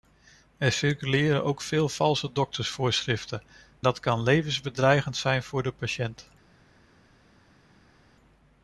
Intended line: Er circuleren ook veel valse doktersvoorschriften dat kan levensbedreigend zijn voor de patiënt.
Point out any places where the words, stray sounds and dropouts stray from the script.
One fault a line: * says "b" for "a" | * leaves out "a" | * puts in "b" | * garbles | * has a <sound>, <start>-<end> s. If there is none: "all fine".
all fine